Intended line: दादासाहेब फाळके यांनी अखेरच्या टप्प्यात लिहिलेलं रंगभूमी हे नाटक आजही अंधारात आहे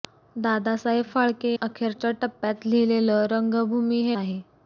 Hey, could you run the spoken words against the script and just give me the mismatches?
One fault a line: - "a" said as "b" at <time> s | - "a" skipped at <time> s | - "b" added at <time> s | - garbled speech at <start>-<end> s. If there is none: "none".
- "यांनी" skipped at 1.5 s
- "नाटक आजही अंधारात" skipped at 4.2 s